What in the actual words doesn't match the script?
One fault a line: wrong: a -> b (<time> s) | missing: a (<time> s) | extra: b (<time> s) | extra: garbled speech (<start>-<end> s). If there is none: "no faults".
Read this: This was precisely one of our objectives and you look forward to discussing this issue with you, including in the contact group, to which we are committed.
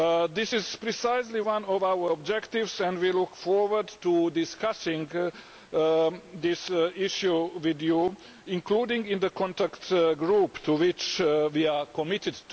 wrong: was -> is (0.5 s)
wrong: you -> we (3.0 s)